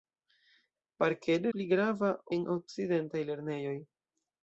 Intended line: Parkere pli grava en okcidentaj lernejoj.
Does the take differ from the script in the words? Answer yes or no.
no